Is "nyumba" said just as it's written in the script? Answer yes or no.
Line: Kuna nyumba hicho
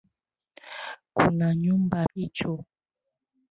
yes